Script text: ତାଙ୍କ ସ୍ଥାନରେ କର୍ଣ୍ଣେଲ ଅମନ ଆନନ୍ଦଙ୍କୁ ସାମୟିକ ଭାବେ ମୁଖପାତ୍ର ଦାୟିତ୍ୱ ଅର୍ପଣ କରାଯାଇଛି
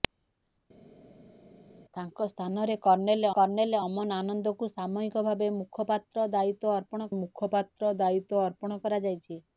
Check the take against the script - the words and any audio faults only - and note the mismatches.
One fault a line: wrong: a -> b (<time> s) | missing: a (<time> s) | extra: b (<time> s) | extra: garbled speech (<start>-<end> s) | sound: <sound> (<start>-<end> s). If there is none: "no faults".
extra: କର୍ଣ୍ଣେଲ (3.3 s)
extra: ମୁଖପାତ୍ର ଦାୟିତ୍ୱ ଅର୍ପଣ (7.2 s)